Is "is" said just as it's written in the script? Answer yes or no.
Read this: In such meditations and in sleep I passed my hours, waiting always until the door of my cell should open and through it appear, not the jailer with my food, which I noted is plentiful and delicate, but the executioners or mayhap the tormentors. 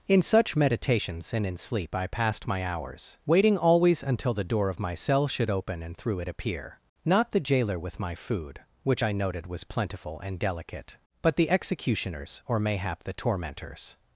no